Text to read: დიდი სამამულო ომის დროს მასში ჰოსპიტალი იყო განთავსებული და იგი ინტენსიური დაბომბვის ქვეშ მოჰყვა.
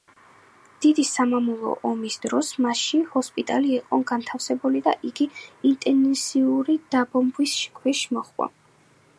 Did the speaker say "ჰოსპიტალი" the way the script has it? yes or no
yes